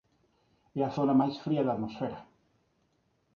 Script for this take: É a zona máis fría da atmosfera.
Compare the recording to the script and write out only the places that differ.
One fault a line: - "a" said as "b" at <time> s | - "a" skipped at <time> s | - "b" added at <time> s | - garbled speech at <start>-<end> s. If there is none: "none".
none